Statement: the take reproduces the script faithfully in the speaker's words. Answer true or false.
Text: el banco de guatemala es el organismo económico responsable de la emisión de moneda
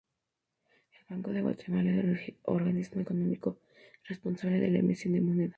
true